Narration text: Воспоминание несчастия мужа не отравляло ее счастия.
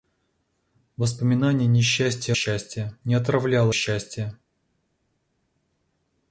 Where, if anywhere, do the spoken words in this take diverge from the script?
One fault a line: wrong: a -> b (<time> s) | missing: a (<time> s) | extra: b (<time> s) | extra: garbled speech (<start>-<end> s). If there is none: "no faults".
wrong: мужа -> счастия (2.3 s)
missing: ее (3.7 s)